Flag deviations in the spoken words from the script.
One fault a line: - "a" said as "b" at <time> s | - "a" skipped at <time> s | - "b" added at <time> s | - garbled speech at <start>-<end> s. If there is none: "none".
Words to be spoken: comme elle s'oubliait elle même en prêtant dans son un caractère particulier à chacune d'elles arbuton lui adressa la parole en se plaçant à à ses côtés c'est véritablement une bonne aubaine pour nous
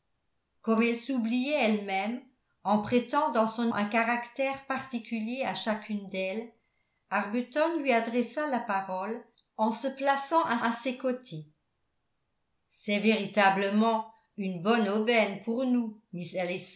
none